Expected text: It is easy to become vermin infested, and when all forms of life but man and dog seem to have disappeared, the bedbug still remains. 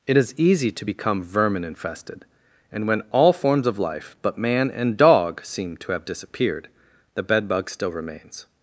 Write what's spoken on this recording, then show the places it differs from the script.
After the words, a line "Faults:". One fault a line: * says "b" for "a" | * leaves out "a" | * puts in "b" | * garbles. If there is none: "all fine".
It is easy to become vermin infested, and when all forms of life but man and dog seem to have disappeared, the bedbug still remains.
Faults:
all fine